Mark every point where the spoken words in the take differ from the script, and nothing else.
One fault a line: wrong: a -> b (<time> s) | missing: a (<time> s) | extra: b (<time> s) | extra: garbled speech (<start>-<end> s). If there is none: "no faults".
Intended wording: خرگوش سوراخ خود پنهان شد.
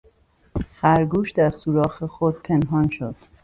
extra: در (1.3 s)